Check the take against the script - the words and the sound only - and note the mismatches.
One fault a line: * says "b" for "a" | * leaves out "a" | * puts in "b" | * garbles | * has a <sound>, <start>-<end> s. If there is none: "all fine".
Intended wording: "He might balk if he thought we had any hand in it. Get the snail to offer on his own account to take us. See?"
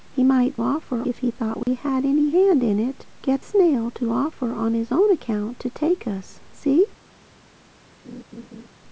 * says "offer" for "balk"
* has a dropout, 1.6-1.7 s
* leaves out "the"
* has a laugh, 8.0-8.7 s